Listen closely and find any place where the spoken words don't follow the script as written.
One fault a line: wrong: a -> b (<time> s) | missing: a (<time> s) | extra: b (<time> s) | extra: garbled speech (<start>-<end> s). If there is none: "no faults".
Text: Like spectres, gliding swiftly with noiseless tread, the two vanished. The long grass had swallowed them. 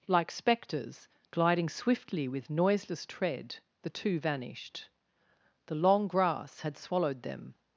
no faults